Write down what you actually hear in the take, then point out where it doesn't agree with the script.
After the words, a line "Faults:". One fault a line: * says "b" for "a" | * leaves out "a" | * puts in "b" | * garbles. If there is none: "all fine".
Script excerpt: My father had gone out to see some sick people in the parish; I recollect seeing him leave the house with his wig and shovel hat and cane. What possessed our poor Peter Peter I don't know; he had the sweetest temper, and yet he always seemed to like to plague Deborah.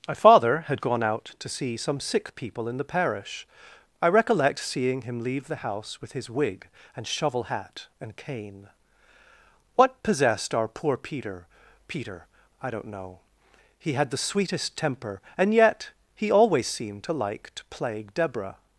My father had gone out to see some sick people in the parish; I recollect seeing him leave the house with his wig and shovel hat and cane. What possessed our poor Peter Peter I don't know; he had the sweetest temper, and yet he always seemed to like to plague Deborah.
Faults:
all fine